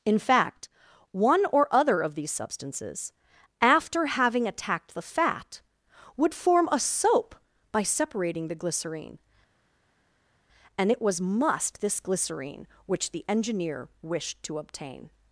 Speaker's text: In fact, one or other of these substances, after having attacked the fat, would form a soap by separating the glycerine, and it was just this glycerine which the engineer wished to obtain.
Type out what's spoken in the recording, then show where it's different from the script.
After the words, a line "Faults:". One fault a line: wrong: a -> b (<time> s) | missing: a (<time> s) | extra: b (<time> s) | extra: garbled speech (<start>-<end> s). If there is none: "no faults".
In fact, one or other of these substances, after having attacked the fat, would form a soap by separating the glycerine, and it was must this glycerine which the engineer wished to obtain.
Faults:
wrong: just -> must (11.2 s)